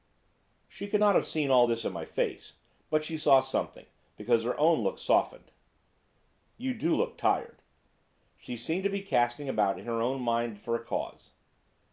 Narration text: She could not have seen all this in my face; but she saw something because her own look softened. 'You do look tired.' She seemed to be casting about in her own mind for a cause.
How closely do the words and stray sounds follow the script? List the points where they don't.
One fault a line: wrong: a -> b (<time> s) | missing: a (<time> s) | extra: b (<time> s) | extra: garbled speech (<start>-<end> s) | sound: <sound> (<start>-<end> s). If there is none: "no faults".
no faults